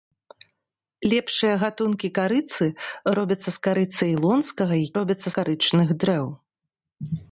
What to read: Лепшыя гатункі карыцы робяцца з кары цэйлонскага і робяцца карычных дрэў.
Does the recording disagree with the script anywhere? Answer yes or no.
no